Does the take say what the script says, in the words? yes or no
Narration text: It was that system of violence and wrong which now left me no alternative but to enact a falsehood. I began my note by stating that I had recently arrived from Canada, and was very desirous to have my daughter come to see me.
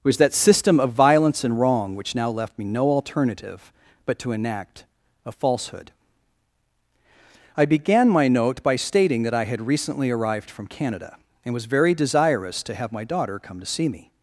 yes